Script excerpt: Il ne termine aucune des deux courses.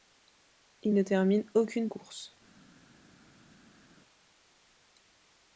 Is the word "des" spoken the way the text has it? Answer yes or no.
no